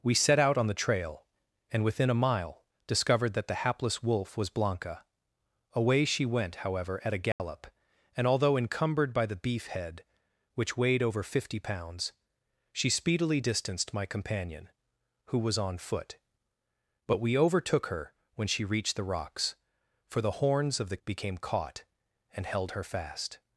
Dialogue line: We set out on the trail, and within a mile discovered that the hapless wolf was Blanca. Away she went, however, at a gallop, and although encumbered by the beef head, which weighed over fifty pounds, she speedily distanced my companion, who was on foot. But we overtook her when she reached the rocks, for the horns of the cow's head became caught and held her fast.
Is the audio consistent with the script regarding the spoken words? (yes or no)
no